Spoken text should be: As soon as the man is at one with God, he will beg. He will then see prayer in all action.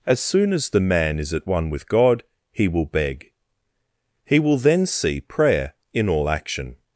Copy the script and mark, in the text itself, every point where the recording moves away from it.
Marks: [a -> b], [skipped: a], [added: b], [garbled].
As soon as the man is at one with God, he will beg. He will then see prayer in all action.